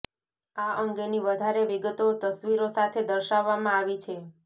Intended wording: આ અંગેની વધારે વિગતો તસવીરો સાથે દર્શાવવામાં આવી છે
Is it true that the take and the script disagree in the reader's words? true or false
false